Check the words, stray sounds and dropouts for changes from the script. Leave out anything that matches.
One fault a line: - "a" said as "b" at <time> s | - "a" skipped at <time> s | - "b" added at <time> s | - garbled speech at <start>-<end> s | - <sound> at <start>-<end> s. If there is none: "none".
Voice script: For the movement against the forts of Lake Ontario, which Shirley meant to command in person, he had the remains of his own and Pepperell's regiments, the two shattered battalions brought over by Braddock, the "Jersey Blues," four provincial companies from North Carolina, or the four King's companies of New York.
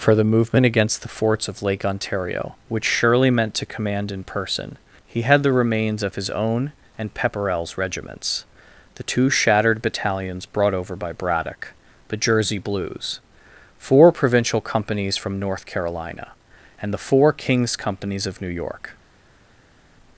- "or" said as "and" at 16.8 s